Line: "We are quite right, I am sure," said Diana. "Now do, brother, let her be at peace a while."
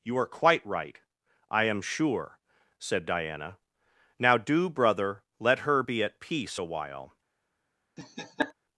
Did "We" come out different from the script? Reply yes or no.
yes